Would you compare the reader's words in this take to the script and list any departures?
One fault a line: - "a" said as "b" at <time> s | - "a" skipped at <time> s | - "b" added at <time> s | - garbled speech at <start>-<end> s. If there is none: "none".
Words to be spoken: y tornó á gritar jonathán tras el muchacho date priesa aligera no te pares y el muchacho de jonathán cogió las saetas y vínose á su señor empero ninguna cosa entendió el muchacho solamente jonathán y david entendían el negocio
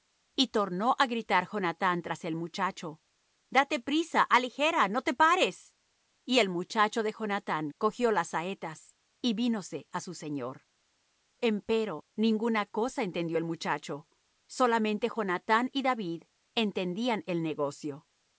none